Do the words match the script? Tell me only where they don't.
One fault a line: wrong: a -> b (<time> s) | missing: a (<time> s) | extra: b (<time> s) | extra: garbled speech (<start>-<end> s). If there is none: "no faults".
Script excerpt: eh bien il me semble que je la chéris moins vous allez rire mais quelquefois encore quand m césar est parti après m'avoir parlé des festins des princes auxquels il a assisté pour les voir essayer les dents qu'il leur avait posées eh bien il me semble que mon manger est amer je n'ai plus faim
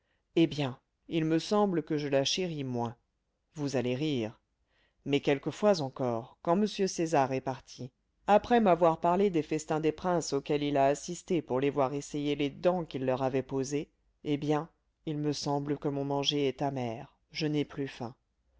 no faults